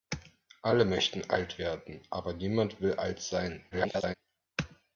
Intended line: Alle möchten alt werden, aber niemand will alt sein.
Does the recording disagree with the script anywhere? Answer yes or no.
yes